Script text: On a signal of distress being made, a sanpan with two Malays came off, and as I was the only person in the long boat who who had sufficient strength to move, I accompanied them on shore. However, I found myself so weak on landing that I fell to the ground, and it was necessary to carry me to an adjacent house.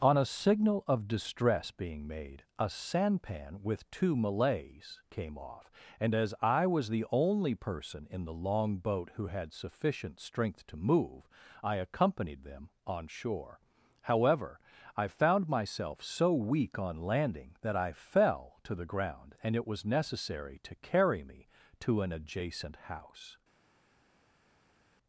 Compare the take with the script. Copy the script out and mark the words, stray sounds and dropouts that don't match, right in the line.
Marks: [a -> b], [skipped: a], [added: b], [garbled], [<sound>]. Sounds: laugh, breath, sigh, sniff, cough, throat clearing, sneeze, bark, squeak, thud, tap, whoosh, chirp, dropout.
On a signal of distress being made, a sanpan with two Malays came off, and as I was the only person in the long boat who [skipped: who] had sufficient strength to move, I accompanied them on shore. However, I found myself so weak on landing that I fell to the ground, and it was necessary to carry me to an adjacent house.